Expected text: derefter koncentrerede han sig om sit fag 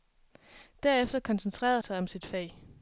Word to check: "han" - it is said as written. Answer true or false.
false